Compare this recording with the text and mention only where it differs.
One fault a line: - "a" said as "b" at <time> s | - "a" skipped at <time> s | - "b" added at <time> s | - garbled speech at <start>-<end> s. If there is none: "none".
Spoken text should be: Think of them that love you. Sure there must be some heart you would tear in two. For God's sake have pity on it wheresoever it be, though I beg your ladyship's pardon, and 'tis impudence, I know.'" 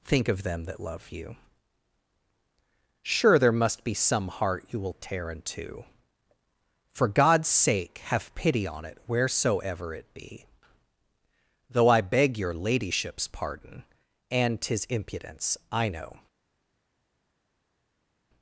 - "would" said as "will" at 4.8 s